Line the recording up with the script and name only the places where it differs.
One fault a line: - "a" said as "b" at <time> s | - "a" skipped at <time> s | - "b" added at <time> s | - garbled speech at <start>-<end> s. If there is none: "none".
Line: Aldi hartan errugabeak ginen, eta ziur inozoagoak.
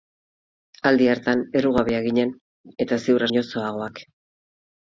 none